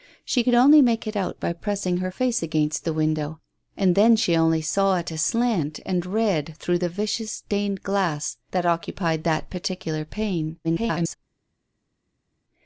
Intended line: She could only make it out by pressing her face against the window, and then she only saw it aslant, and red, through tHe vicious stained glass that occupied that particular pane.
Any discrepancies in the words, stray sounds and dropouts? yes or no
yes